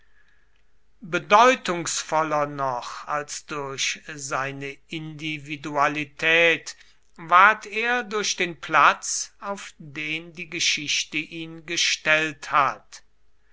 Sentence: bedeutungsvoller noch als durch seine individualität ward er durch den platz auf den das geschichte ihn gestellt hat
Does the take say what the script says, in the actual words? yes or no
no